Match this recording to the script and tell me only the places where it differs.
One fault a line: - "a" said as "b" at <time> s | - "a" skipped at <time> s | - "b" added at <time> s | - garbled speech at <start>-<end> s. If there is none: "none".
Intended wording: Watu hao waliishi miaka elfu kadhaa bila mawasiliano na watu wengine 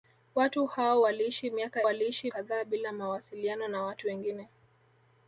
- "elfu" said as "waliishi" at 1.8 s